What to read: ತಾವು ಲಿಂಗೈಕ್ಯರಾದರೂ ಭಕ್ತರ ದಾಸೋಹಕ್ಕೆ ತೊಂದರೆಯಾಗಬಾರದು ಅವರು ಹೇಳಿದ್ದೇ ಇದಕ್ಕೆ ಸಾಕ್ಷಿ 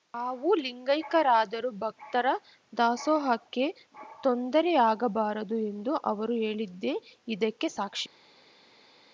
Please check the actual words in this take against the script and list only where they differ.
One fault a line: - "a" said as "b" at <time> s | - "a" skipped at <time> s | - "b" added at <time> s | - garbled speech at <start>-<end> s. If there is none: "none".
- "ಎಂದು" added at 5.7 s